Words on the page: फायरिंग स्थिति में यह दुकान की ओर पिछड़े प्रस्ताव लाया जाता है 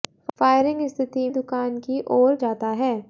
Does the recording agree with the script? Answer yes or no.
no